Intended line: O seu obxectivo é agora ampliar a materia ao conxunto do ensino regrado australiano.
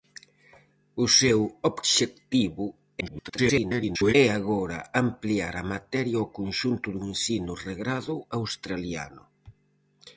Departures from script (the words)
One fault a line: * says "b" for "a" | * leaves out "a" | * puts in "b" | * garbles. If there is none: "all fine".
* garbles